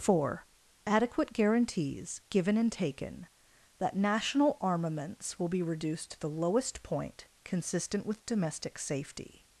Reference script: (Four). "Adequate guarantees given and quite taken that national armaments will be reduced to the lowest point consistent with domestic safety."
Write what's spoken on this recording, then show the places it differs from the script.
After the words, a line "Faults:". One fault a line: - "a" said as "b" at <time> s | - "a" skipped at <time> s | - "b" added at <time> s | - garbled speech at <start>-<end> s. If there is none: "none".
(Four). "Adequate guarantees given and taken that national armaments will be reduced to the lowest point consistent with domestic safety."
Faults:
- "quite" skipped at 2.7 s